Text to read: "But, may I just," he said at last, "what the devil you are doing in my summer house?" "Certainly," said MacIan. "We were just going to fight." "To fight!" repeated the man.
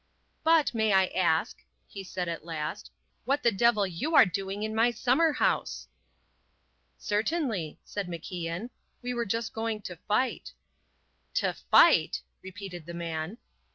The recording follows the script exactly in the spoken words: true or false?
false